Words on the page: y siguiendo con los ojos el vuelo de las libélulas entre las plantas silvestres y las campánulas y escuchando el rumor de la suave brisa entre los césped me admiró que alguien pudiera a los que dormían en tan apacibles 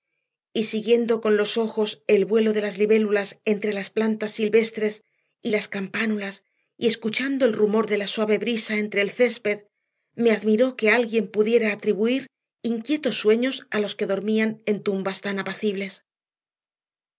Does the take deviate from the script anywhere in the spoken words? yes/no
yes